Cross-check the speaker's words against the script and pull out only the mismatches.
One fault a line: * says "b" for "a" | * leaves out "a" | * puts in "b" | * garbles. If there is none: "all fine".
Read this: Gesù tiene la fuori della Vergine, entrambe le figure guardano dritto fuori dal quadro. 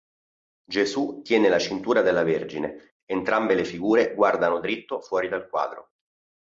* says "cintura" for "fuori"